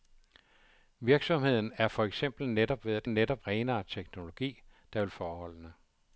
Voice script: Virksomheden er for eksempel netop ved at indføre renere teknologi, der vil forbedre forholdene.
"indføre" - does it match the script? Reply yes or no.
no